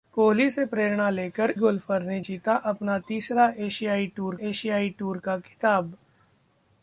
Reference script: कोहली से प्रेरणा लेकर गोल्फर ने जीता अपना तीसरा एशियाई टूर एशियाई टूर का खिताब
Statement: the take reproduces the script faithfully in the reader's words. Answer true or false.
true